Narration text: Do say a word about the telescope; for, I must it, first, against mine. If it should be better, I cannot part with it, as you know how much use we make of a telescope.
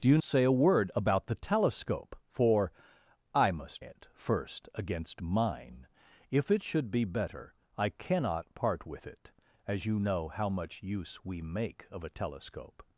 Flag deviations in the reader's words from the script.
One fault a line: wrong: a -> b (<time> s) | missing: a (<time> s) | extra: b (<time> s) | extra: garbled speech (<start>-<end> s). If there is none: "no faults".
no faults